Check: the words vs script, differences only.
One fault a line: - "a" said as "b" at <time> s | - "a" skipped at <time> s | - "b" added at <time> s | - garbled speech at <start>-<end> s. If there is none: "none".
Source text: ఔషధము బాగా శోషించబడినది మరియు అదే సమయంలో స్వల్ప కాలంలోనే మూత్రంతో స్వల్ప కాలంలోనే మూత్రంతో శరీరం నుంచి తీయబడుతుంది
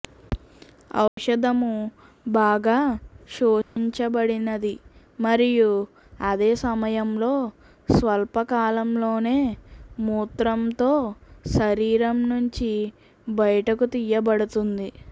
- "స్వల్ప కాలంలోనే మూత్రంతో" skipped at 10.9 s
- "బయటకు" added at 13.3 s